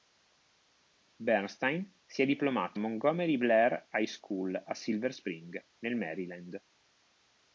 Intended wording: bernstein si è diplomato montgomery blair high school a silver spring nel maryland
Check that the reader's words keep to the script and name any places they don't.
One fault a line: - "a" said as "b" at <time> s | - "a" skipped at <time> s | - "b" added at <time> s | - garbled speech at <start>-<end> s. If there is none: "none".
none